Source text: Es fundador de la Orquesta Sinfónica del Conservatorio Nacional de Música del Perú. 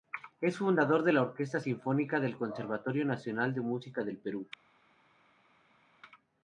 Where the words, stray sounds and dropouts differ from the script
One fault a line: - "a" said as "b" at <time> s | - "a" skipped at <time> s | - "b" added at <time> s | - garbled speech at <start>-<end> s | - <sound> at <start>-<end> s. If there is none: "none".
none